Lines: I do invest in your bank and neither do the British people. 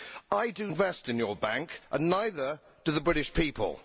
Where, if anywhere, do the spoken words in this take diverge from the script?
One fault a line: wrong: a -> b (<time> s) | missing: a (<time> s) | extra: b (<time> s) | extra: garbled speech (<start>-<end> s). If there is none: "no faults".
no faults